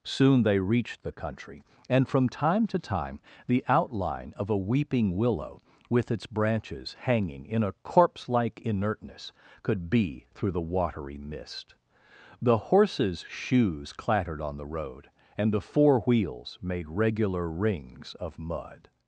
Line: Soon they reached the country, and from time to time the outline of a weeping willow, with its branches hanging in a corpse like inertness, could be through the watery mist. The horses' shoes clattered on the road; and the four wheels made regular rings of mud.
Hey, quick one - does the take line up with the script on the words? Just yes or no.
yes